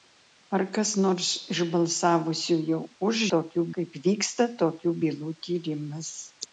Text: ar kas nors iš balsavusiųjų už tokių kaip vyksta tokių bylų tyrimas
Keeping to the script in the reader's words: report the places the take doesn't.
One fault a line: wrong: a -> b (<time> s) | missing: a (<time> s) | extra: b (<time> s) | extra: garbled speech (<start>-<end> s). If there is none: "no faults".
no faults